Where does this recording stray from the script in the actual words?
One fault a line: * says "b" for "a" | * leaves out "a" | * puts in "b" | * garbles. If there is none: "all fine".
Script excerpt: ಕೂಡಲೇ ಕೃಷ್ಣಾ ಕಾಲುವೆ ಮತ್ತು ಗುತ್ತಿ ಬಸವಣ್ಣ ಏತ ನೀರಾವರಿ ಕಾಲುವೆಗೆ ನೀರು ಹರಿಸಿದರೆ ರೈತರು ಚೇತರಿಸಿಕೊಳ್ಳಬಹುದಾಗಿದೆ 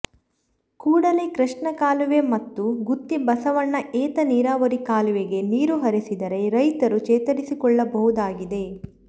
all fine